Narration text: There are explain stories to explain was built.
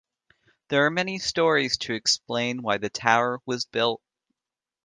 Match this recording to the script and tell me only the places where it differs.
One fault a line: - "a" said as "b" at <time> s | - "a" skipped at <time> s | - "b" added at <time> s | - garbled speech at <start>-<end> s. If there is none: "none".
- "explain" said as "many" at 0.9 s
- "why the tower" added at 2.6 s